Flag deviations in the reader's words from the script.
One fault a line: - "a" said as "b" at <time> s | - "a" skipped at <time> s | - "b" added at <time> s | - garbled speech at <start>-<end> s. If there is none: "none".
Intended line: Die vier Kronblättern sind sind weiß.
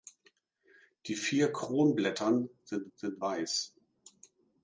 none